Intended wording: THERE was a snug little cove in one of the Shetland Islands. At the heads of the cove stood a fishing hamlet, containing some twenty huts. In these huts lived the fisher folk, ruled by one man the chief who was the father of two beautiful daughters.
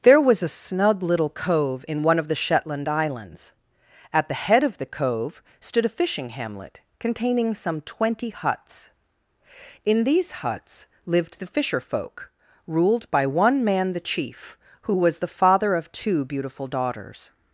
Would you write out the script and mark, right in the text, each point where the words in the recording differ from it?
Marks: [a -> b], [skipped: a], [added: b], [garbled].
THERE was a snug little cove in one of the Shetland Islands. At the [heads -> head] of the cove stood a fishing hamlet, containing some twenty huts. In these huts lived the fisher folk, ruled by one man the chief who was the father of two beautiful daughters.